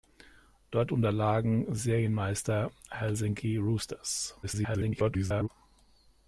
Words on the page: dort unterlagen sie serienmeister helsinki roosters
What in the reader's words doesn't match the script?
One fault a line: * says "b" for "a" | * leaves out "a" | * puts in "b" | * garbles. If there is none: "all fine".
* leaves out "sie"
* garbles